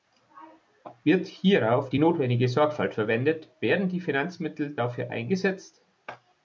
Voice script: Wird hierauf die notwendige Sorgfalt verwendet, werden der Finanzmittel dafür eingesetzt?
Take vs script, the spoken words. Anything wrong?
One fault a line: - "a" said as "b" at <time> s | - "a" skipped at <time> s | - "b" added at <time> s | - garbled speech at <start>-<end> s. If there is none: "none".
- "der" said as "die" at 3.9 s